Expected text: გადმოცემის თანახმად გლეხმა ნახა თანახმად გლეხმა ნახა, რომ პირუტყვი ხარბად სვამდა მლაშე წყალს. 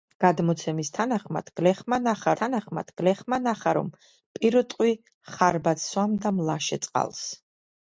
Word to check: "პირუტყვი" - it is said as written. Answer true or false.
true